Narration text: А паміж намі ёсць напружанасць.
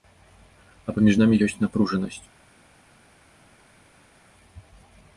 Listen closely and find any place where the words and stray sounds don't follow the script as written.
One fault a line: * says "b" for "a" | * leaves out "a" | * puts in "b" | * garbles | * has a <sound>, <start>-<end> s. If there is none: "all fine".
all fine